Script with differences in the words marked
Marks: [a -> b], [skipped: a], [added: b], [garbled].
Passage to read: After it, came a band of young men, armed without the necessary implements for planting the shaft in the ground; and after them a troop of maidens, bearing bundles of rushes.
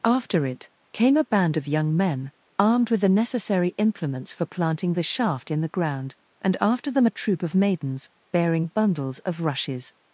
After it, came a band of young men, armed [without -> with] the necessary implements for planting the shaft in the ground; and after them a troop of maidens, bearing bundles of rushes.